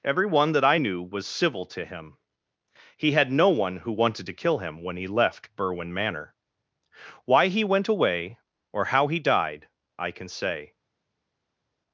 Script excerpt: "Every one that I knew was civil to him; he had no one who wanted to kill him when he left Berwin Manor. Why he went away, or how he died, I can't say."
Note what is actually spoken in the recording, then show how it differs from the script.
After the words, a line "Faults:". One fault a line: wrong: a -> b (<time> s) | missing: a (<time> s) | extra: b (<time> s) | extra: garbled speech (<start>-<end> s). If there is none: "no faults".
"Every one that I knew was civil to him; he had no one who wanted to kill him when he left Berwin Manor. Why he went away, or how he died, I can say."
Faults:
wrong: can't -> can (10.1 s)